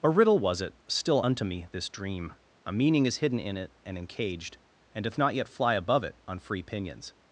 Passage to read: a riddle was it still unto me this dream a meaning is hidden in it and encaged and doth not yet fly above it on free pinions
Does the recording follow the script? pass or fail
pass